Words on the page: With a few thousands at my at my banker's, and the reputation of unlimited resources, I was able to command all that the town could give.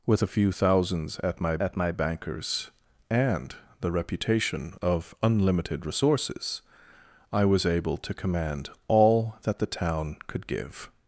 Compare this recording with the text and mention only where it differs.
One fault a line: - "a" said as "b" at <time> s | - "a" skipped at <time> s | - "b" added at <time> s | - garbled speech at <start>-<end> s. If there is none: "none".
none